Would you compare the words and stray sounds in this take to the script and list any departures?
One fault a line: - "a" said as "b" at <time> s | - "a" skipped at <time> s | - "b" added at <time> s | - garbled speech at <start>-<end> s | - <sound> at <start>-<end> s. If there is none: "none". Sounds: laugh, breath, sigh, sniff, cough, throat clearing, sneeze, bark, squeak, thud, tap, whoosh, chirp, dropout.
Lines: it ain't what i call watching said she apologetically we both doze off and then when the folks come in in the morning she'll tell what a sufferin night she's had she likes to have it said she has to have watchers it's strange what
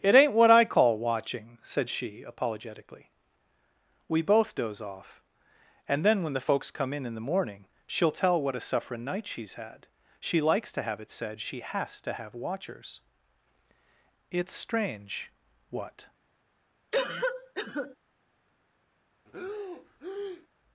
- cough at 16.9-18.0 s
- breath at 19.3-20.5 s